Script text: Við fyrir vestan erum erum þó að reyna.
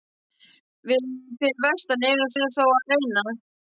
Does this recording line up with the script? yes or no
yes